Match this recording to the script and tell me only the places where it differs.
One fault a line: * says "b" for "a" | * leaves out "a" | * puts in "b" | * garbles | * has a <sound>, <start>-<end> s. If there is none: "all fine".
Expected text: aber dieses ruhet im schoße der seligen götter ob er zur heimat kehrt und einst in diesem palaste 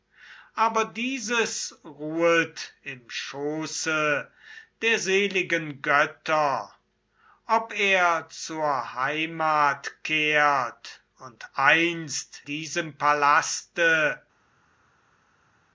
* leaves out "in"